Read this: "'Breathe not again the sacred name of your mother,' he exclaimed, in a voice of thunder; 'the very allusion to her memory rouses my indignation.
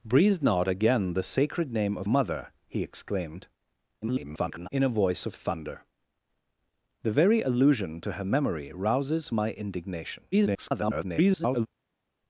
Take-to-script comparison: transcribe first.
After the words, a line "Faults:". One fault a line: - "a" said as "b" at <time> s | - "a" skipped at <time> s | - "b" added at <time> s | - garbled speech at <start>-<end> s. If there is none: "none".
"'Breathe not again the sacred name of mother,' he exclaimed, [garbled] in a voice of thunder; 'the very allusion to her memory rouses my indignation. [garbled]
Faults:
- "your" skipped at 2.1 s
- garbled speech at 4.0-4.7 s
- garbled speech at 10.3-11.7 s